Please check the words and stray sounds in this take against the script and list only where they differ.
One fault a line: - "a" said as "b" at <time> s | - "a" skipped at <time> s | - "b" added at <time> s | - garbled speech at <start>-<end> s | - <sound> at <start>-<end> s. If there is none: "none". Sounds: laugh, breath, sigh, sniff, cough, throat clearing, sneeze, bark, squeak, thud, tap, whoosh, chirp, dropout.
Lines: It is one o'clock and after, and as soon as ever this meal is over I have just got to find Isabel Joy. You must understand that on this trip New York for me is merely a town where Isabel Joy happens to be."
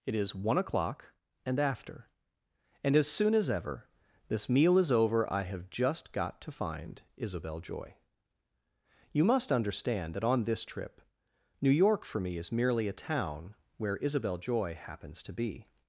none